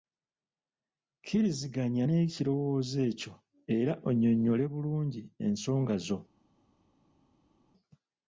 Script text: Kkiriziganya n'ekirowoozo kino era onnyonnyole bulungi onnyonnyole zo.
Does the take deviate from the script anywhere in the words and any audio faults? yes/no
yes